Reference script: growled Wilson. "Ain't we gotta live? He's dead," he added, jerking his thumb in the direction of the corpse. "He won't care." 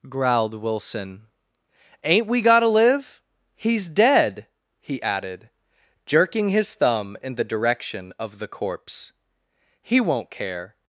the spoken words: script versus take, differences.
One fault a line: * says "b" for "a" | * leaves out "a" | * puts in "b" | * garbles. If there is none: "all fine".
all fine